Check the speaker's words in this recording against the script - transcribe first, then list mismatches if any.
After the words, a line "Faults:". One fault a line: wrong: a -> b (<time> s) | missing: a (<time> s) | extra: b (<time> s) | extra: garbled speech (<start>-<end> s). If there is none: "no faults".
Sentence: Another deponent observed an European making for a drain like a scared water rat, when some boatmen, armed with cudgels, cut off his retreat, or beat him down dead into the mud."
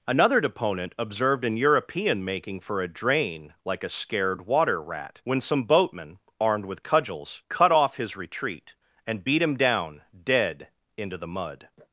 Another deponent observed an European making for a drain like a scared water rat, when some boatmen, armed with cudgels, cut off his retreat, and beat him down dead into the mud."
Faults:
wrong: or -> and (9.1 s)